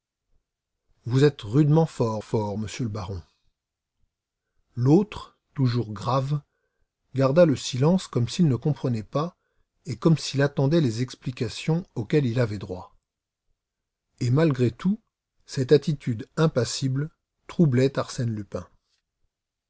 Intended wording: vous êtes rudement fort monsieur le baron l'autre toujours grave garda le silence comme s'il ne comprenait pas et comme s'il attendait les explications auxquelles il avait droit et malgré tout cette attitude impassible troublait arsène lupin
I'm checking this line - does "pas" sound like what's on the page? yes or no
yes